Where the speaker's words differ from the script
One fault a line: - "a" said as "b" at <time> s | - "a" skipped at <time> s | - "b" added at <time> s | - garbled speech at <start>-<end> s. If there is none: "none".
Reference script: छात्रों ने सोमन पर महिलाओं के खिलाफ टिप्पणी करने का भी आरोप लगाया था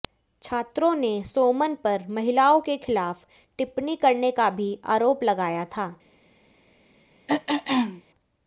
none